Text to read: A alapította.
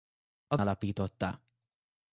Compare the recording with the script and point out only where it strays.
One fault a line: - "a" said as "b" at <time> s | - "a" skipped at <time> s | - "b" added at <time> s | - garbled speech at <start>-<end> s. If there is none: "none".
none